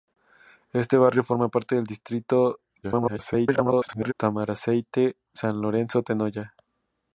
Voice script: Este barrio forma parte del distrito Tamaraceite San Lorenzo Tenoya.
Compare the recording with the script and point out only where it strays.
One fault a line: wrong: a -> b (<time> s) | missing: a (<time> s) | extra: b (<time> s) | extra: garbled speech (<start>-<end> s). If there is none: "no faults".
extra: garbled speech (2.8-4.1 s)